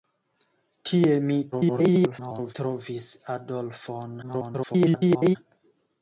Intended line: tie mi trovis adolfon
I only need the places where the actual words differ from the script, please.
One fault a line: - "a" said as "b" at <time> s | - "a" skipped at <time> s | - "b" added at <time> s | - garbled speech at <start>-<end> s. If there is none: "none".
- garbled speech at 1.5-2.5 s
- garbled speech at 4.2-5.4 s